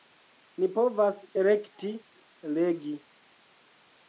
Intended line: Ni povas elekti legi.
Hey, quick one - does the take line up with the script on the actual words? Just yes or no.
yes